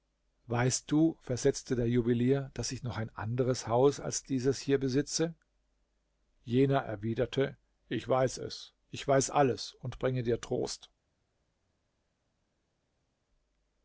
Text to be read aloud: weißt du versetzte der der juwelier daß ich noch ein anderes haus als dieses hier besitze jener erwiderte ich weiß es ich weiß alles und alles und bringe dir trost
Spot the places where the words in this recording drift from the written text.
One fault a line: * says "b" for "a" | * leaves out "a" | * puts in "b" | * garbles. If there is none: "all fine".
* leaves out "der"
* leaves out "alles und"